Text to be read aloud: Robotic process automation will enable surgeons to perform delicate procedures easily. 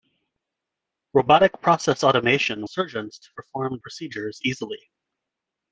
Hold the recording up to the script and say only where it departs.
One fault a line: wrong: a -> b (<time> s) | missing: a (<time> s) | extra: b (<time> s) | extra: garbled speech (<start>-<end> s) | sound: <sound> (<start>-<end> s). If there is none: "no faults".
missing: will enable (2.7 s)
missing: delicate (3.8 s)